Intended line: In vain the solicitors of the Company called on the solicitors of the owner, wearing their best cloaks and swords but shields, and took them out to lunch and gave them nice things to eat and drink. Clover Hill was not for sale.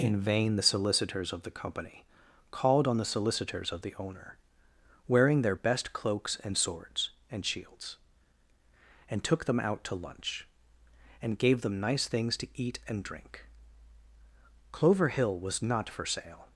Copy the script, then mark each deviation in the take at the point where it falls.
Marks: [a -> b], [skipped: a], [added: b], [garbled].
In vain the solicitors of the Company called on the solicitors of the owner, wearing their best cloaks and swords [but -> and] shields, and took them out to lunch and gave them nice things to eat and drink. Clover Hill was not for sale.